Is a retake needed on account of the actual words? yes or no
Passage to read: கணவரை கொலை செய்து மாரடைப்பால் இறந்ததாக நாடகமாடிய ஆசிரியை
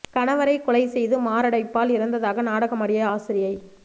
no